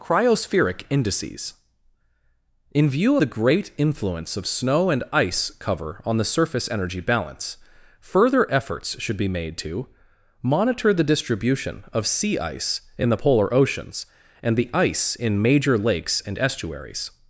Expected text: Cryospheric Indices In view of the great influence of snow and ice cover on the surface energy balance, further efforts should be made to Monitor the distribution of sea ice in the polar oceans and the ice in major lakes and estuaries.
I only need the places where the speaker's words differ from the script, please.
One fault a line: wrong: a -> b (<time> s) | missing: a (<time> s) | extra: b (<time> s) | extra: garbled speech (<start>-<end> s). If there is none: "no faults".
missing: of (3.2 s)